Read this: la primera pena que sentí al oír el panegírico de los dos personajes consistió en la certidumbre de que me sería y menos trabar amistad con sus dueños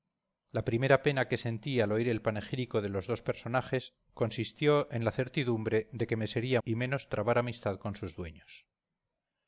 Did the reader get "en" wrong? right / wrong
right